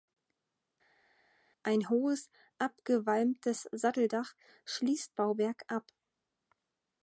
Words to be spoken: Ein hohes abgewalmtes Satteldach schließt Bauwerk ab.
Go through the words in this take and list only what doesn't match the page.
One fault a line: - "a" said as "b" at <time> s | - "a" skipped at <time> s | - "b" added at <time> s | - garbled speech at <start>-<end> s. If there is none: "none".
none